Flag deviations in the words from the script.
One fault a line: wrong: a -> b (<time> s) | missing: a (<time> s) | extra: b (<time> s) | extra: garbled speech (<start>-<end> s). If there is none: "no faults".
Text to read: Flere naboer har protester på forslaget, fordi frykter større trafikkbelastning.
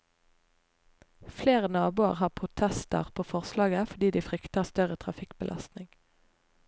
extra: de (4.1 s)